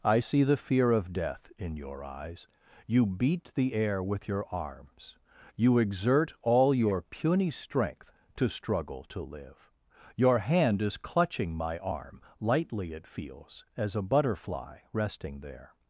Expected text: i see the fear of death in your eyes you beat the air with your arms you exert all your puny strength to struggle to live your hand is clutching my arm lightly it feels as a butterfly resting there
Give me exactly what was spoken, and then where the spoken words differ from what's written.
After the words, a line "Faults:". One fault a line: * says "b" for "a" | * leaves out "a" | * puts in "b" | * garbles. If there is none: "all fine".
i see the fear of death in your eyes you beat the air with your arms you exert all your puny strength to struggle to live your hand is clutching my arm lightly it feels as a butterfly resting there
Faults:
all fine